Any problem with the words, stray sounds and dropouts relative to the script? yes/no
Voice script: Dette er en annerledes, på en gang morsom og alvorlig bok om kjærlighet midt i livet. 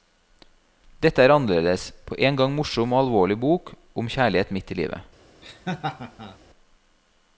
yes